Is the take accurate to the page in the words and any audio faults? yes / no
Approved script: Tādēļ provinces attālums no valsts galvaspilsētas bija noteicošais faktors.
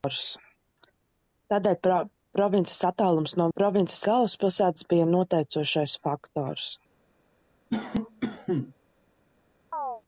no